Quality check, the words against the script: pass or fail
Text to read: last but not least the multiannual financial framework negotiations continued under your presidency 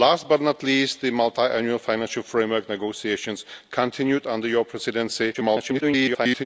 fail